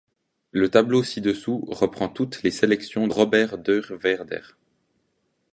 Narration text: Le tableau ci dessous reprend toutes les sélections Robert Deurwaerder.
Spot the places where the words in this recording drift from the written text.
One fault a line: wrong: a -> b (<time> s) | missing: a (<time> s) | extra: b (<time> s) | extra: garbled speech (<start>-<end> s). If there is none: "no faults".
no faults